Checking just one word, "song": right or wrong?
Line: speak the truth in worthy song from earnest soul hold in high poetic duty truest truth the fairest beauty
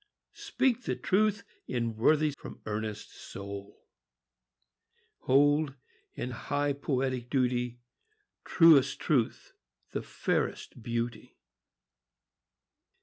wrong